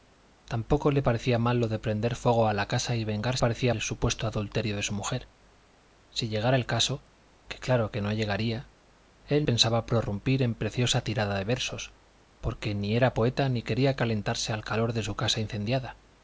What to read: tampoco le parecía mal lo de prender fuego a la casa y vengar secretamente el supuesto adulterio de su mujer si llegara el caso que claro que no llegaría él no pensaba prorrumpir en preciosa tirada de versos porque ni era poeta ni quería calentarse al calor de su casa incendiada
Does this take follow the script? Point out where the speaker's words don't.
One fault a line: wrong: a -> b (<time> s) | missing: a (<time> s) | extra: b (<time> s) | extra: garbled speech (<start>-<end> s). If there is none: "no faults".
wrong: secretamente -> parecía (3.4 s)
missing: no (9.5 s)